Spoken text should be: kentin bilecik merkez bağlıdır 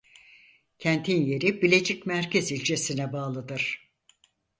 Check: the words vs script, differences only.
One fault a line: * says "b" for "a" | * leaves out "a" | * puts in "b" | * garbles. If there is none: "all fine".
* puts in "yeri"
* puts in "ilçesine"